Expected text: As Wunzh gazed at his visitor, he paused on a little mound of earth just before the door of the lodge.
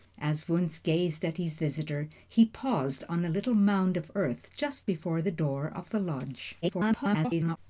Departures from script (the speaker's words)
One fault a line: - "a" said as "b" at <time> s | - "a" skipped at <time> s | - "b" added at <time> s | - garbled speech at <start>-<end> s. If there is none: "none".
- garbled speech at 6.6-7.6 s